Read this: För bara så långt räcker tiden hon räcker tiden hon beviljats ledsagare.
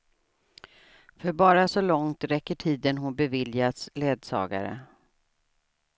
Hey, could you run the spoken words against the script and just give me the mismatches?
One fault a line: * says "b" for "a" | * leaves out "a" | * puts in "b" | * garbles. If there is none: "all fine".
* leaves out "räcker tiden hon"